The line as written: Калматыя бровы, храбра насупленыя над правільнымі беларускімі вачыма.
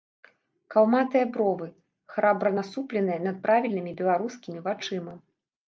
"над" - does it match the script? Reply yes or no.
yes